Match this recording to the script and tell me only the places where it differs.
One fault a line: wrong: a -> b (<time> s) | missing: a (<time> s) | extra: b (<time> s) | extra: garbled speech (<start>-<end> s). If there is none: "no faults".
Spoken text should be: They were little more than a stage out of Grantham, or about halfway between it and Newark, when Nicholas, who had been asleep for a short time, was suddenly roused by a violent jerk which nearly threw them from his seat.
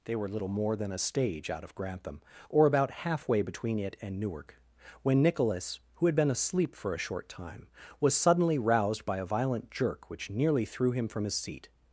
wrong: them -> him (10.9 s)